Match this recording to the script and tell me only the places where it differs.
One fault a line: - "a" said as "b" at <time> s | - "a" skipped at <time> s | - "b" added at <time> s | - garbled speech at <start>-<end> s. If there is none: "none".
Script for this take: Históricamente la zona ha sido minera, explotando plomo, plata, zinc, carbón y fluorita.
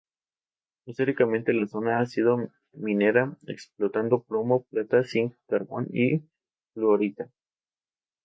none